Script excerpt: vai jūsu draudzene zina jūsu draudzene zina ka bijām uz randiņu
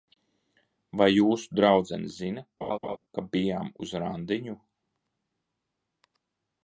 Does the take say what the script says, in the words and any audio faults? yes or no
no